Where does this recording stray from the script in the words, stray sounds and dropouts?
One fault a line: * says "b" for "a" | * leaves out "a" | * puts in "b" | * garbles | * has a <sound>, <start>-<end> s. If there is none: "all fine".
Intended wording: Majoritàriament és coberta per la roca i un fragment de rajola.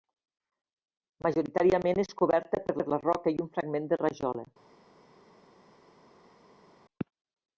* puts in "per"